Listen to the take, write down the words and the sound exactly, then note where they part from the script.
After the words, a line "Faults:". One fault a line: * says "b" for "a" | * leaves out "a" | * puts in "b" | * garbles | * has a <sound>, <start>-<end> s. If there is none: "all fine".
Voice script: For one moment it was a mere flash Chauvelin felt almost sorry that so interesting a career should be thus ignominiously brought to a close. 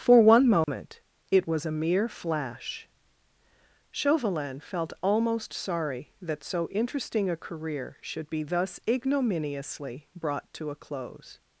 For one moment it was a mere flash Chauvelin felt almost sorry that so interesting a career should be thus ignominiously brought to a close.
Faults:
* has a dropout, 0.6-0.7 s